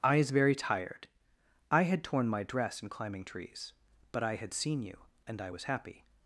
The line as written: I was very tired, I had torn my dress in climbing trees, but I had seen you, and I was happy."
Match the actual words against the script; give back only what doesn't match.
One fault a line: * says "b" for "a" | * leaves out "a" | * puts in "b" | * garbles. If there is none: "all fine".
* says "is" for "was"